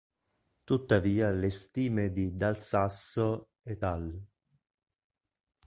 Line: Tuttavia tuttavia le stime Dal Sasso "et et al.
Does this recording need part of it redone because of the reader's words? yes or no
yes